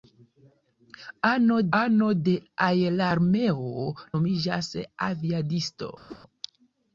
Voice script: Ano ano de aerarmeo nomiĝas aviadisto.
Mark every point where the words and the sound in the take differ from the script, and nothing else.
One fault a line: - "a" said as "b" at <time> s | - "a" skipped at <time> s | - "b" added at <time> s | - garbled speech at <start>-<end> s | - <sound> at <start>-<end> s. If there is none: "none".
- whoosh at 6.1-6.2 s